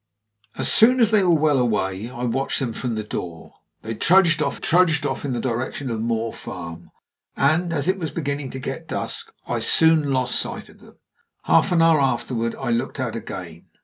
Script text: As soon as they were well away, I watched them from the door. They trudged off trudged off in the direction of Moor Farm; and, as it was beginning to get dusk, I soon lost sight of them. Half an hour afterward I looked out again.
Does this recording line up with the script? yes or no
yes